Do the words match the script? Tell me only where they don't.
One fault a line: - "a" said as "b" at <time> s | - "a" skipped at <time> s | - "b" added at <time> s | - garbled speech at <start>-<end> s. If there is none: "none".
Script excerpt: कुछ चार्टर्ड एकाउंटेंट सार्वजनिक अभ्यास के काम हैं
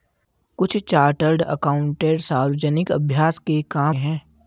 none